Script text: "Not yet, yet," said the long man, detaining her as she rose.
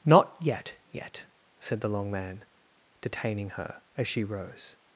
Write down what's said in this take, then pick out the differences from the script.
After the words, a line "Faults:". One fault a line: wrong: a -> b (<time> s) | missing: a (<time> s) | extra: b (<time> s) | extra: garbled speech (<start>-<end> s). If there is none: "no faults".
"Not yet, yet," said the long man, detaining her as she rose.
Faults:
no faults